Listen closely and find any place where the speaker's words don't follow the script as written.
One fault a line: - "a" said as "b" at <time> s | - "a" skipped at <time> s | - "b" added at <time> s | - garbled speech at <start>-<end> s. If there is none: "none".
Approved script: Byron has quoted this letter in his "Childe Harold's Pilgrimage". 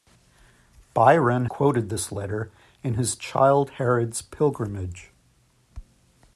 - "has" skipped at 1.4 s